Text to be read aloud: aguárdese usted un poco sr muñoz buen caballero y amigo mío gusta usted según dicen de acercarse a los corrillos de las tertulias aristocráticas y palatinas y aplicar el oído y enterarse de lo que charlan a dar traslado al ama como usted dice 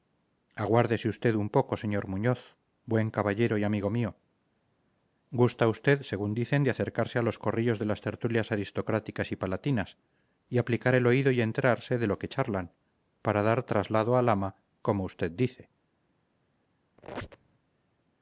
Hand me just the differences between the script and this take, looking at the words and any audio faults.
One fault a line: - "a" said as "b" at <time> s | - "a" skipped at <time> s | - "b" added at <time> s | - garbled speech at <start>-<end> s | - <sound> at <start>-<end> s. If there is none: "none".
- "a" said as "para" at 13.2 s
- squeak at 17.0-17.6 s